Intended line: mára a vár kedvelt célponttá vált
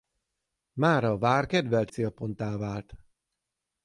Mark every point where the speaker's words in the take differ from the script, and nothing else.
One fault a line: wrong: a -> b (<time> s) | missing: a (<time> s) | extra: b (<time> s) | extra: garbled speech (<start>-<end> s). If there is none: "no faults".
no faults